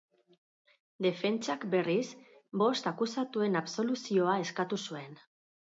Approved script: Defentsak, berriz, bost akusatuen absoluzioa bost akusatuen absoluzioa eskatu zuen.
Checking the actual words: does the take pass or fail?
fail